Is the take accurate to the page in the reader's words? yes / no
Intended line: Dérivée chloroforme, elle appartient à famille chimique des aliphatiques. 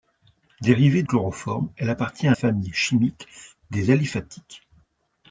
yes